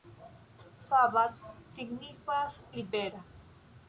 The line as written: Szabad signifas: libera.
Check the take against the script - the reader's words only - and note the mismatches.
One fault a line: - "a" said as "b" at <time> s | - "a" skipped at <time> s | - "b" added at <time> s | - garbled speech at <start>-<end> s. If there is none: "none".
none